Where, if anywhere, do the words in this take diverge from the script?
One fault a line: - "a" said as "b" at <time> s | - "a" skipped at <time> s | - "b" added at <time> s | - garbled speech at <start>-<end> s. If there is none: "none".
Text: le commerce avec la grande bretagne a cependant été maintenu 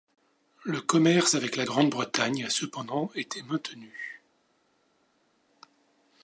none